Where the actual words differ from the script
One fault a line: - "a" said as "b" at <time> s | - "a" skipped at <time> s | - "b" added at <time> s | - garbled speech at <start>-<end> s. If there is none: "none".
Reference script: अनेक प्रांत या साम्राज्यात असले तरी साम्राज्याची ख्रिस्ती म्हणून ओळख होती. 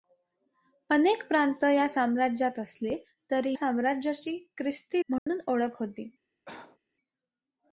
none